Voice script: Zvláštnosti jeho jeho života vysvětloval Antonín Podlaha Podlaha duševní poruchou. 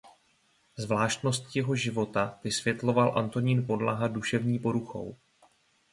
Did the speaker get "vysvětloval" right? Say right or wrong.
right